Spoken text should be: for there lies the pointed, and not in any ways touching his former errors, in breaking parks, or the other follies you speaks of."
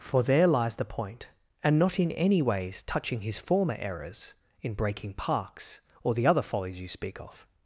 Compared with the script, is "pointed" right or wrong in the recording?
wrong